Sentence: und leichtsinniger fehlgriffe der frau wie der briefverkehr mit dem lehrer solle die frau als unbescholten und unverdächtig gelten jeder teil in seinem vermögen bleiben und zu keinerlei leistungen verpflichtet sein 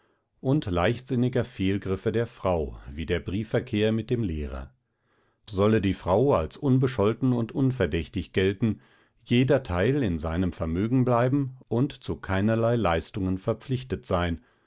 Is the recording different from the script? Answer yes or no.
no